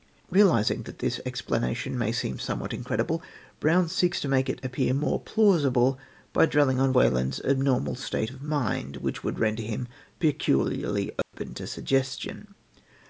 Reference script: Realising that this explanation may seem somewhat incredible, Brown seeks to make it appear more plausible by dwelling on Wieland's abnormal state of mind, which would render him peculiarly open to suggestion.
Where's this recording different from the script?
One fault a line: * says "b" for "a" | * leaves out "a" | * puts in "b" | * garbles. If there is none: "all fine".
all fine